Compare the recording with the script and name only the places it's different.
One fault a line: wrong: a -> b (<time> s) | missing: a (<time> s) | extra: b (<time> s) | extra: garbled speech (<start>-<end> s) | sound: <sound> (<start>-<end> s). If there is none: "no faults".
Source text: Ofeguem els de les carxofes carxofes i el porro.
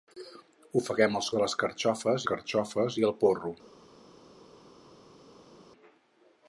no faults